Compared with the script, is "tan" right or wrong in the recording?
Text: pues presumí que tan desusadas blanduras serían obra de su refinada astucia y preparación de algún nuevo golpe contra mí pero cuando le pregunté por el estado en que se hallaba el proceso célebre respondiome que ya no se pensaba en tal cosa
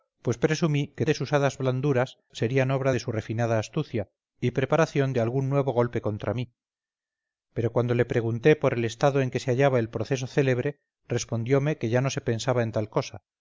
wrong